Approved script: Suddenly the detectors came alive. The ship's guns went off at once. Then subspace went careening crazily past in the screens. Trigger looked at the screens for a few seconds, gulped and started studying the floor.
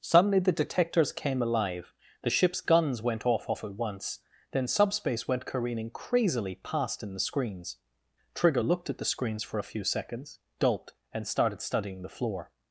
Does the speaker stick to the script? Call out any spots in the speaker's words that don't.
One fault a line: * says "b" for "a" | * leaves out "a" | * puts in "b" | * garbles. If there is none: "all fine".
* puts in "off"